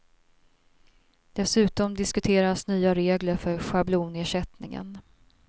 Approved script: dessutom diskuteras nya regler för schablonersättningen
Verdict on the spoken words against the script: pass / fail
pass